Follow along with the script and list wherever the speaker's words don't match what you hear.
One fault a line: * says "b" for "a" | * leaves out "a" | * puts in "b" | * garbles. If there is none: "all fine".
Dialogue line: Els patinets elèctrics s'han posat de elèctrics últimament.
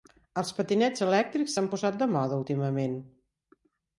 * says "moda" for "elèctrics"